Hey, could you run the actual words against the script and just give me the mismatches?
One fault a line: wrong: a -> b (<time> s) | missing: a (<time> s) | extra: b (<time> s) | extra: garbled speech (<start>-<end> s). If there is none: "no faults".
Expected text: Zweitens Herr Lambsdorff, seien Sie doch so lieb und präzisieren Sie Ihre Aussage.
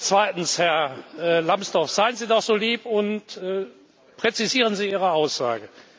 no faults